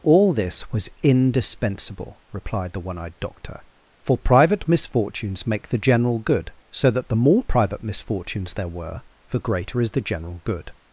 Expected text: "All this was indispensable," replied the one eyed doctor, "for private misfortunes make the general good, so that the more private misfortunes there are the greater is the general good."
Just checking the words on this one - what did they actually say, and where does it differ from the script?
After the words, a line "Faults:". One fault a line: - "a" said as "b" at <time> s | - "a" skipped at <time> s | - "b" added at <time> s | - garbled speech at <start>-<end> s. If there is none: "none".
"All this was indispensable," replied the one eyed doctor, "for private misfortunes make the general good, so that the more private misfortunes there were the greater is the general good."
Faults:
- "are" said as "were" at 8.7 s